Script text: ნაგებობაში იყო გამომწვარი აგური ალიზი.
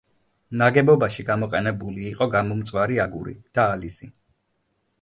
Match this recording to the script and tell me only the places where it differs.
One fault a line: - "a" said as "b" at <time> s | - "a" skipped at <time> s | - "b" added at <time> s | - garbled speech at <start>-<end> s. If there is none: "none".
- "გამოყენებული" added at 1.3 s
- "და" added at 3.6 s